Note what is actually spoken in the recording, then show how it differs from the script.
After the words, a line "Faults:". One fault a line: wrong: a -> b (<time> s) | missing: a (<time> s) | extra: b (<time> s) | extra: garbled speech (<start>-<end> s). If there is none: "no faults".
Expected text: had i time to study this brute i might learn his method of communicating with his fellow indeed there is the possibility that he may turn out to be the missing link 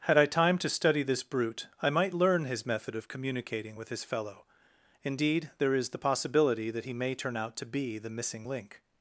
had i time to study this brute i might learn his method of communicating with his fellow indeed there is the possibility that he may turn out to be the missing link
Faults:
no faults